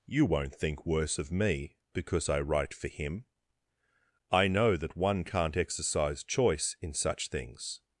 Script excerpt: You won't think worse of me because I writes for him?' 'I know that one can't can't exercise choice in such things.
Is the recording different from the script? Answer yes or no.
yes